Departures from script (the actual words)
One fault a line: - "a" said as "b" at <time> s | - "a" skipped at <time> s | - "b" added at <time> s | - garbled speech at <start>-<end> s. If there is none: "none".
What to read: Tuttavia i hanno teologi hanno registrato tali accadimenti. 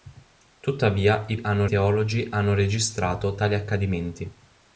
none